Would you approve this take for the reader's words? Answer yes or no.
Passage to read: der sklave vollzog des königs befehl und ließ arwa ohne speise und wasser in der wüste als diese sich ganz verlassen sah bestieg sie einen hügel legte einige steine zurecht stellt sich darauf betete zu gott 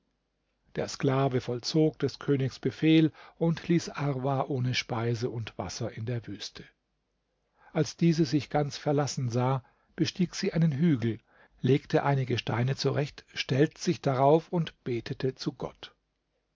no